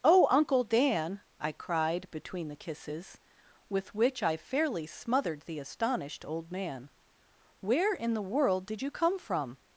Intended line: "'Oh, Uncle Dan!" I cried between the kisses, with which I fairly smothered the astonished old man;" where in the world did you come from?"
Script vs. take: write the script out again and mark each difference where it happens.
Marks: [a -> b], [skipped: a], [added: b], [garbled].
"'Oh, Uncle Dan!" I cried between the kisses, with which I fairly smothered the astonished old man;" where in the world did you come from?"